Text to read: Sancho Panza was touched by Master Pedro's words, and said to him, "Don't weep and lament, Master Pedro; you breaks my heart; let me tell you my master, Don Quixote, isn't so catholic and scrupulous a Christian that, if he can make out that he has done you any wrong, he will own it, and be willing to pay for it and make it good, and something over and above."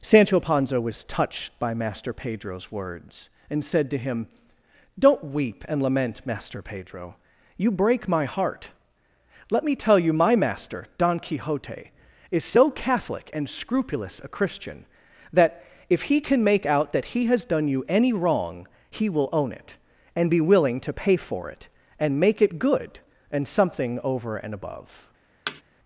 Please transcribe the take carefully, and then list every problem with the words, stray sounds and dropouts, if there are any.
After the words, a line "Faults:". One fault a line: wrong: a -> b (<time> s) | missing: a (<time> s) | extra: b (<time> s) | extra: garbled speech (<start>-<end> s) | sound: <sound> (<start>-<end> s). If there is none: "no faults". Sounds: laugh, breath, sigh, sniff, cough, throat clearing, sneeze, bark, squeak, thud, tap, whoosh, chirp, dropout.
Sancho Panza was touched by Master Pedro's words, and said to him, "Don't weep and lament, Master Pedro; you break my heart; let me tell you my master, Don Quixote, is so catholic and scrupulous a Christian that, if he can make out that he has done you any wrong, he will own it, and be willing to pay for it and make it good, and something over and above."
Faults:
wrong: breaks -> break (7.7 s)
wrong: isn't -> is (12.3 s)
sound: thud (25.5-25.6 s)